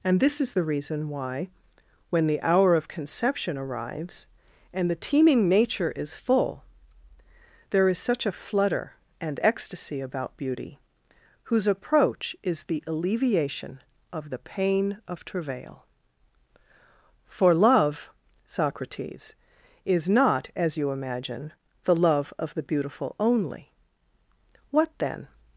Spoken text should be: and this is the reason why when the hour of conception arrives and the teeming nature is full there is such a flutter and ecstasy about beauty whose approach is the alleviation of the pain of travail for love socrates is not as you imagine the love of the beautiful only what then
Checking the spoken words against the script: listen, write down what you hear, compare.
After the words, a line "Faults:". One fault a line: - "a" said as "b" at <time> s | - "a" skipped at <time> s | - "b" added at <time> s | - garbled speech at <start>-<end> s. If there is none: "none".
and this is the reason why when the hour of conception arrives and the teeming nature is full there is such a flutter and ecstasy about beauty whose approach is the alleviation of the pain of travail for love socrates is not as you imagine the love of the beautiful only what then
Faults:
none